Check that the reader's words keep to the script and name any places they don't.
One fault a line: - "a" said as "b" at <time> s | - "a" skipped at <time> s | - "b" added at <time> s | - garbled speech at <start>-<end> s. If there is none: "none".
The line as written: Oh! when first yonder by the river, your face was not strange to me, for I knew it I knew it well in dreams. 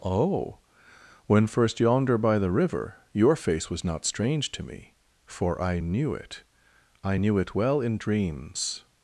none